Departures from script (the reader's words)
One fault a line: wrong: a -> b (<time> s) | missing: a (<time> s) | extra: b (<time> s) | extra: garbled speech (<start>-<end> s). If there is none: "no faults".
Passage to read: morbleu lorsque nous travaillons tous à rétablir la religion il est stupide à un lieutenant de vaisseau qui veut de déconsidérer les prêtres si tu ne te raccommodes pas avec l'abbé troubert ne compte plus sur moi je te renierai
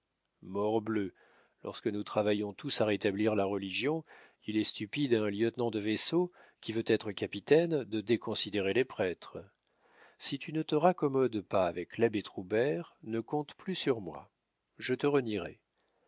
extra: être capitaine (6.9 s)